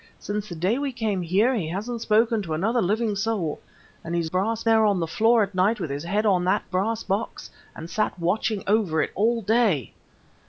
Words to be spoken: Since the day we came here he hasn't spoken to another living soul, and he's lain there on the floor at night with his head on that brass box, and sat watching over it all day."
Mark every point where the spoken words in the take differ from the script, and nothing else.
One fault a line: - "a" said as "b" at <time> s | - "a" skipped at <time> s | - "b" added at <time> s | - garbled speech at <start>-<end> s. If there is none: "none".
- "lain" said as "brass" at 4.3 s